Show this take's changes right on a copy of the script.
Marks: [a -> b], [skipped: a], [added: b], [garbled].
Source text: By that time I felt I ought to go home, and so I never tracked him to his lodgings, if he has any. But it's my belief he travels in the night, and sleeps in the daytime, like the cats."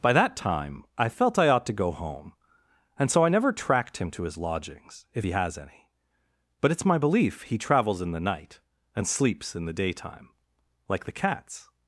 By that time I felt I ought to go home, and so I never tracked him to his lodgings, if he has any. But it's my belief he travels in the night, and sleeps in the daytime, like the cats."